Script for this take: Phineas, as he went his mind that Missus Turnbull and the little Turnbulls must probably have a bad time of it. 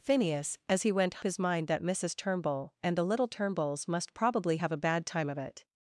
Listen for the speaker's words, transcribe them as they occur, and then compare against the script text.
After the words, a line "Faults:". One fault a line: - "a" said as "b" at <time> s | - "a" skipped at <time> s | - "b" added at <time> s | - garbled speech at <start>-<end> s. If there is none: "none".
Phineas, as he went his mind that Missus Turnbull and the little Turnbulls must probably have a bad time of it.
Faults:
none